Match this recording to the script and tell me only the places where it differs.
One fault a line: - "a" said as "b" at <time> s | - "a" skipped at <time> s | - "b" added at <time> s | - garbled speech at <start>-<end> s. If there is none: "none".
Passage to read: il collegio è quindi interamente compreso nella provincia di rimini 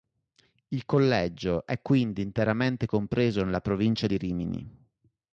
none